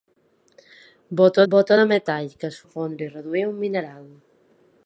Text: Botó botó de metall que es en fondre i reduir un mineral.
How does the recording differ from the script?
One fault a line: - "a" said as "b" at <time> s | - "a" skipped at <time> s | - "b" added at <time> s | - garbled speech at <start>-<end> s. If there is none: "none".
none